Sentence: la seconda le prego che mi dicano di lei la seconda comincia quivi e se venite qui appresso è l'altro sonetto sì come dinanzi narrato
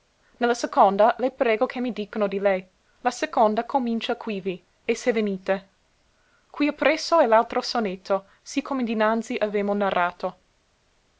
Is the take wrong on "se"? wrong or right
right